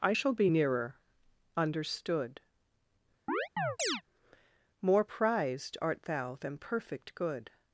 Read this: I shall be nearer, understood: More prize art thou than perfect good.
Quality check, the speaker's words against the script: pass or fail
fail